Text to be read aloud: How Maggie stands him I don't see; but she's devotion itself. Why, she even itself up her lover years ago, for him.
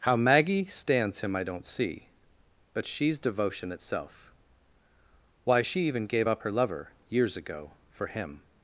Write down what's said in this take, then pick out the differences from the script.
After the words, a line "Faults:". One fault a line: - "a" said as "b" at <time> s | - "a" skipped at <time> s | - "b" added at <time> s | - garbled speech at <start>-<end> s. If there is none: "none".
How Maggie stands him I don't see; but she's devotion itself. Why, she even gave up her lover years ago, for him.
Faults:
- "itself" said as "gave" at 6.1 s